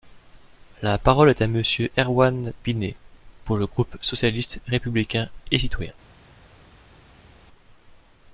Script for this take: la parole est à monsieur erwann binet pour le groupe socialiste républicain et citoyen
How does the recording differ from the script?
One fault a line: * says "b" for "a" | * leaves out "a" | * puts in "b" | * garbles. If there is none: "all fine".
all fine